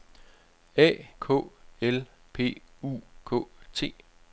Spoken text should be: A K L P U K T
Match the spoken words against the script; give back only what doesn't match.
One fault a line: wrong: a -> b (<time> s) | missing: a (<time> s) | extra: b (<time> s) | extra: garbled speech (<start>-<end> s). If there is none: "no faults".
no faults